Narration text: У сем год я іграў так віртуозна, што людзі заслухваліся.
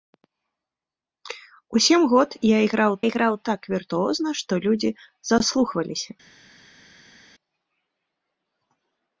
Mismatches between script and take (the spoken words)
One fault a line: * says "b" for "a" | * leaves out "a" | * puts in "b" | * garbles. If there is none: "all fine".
* puts in "іграў"